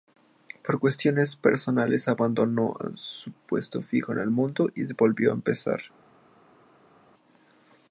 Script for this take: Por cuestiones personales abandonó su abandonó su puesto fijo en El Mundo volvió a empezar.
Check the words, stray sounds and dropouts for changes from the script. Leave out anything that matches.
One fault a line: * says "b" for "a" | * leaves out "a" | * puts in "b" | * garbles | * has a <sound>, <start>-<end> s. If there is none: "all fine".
* leaves out "abandonó su"
* puts in "y"